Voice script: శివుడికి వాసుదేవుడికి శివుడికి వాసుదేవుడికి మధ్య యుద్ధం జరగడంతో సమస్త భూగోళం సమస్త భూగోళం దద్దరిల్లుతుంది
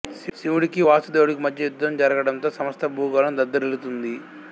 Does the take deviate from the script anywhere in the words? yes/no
yes